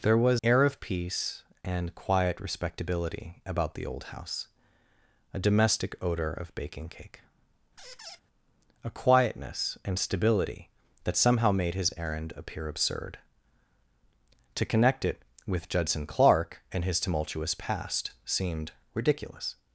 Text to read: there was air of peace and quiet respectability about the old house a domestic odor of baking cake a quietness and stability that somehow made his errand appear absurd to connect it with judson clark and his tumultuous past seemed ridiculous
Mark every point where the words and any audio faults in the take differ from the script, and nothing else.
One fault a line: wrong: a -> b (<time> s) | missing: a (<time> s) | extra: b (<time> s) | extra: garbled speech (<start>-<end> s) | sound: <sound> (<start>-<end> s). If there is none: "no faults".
sound: squeak (7.8-8.2 s)